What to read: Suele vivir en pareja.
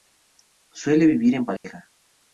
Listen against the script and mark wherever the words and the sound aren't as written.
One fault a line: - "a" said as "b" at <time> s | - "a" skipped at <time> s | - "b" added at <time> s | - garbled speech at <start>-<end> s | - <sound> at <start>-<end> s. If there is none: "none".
- dropout at 1.6-1.6 s